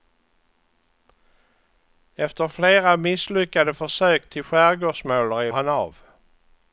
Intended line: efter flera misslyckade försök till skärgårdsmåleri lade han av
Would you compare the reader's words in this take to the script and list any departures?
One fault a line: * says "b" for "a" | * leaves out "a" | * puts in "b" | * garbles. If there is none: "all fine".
* leaves out "lade"